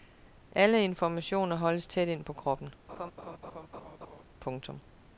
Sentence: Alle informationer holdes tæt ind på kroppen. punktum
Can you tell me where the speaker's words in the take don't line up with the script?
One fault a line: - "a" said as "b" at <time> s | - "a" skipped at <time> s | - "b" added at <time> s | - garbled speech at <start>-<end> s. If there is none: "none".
none